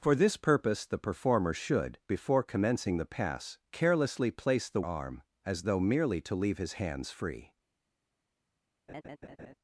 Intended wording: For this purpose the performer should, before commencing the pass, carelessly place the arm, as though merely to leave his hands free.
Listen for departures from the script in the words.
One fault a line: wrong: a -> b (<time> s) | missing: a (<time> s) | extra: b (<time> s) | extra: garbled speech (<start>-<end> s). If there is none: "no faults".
no faults